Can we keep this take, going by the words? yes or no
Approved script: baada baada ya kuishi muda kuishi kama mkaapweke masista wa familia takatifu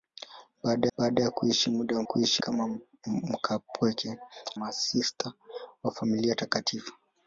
yes